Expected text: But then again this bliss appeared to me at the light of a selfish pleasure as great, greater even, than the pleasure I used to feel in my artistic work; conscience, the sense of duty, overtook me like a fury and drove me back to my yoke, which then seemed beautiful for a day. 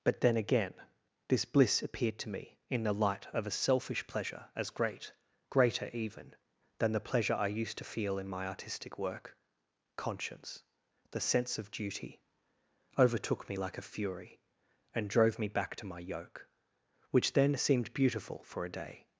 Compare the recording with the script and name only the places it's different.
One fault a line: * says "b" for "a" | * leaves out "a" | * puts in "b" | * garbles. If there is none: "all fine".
* says "in" for "at"